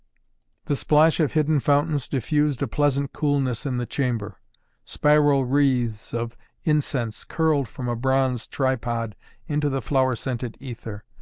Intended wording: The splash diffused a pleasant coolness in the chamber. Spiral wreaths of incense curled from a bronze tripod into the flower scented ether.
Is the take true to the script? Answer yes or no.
no